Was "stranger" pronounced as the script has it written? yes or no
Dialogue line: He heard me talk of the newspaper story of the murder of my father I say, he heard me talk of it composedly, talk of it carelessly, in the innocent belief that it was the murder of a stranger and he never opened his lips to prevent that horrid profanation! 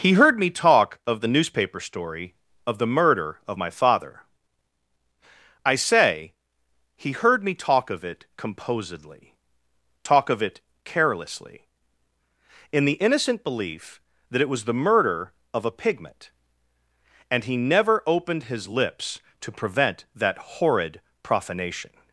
no